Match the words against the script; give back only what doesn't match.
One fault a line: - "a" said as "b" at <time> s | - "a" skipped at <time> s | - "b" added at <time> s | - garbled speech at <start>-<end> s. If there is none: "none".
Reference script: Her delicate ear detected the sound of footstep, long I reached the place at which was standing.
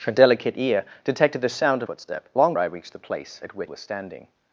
none